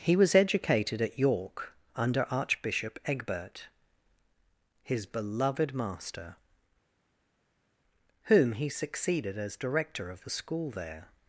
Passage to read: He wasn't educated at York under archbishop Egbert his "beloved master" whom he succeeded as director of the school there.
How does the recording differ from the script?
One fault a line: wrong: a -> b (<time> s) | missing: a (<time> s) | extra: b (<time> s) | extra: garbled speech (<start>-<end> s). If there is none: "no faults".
wrong: wasn't -> was (0.1 s)